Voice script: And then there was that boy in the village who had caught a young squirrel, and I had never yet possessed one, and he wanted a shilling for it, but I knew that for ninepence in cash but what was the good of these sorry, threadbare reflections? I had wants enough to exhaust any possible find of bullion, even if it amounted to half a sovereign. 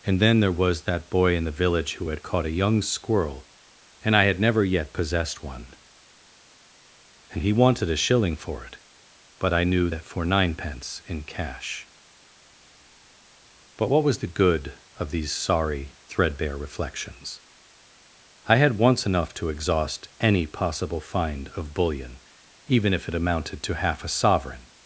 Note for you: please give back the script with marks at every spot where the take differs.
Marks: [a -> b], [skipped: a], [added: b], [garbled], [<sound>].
And then there was that boy in the village who had caught a young squirrel, and I had never yet possessed one, and he wanted a shilling for it, but I knew that for ninepence in cash but what was the good of these sorry, threadbare reflections? I had [wants -> once] enough to exhaust any possible find of bullion, even if it amounted to half a sovereign.